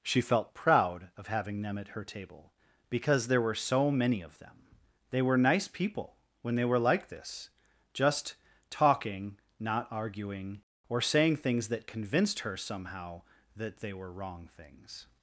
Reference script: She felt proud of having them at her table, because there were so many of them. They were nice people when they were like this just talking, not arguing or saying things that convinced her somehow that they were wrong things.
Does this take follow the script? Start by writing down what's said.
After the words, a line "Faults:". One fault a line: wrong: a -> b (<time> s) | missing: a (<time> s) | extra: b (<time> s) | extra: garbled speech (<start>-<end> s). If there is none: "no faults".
She felt proud of having them at her table, because there were so many of them. They were nice people when they were like this just talking, not arguing or saying things that convinced her somehow that they were wrong things.
Faults:
no faults